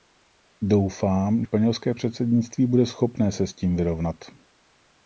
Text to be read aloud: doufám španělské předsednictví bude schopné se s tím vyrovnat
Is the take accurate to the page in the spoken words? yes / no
yes